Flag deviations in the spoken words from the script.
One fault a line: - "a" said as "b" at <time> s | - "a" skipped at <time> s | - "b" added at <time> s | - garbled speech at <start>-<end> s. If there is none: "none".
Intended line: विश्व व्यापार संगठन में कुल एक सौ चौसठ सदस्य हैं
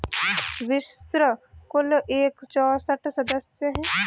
- "व्यापार संगठन में" skipped at 1.2 s
- "सौ" skipped at 2.4 s